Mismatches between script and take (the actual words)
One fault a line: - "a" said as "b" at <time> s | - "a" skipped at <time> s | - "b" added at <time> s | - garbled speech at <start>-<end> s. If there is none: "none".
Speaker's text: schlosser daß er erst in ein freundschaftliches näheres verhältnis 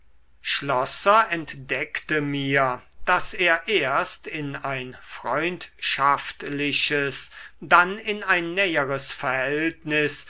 - "entdeckte mir" added at 1.3 s
- "dann in ein" added at 7.6 s